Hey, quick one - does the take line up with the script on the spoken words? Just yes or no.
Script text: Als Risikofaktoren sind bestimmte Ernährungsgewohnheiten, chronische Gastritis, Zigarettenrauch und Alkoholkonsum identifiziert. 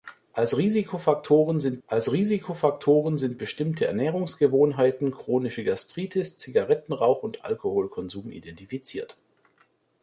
no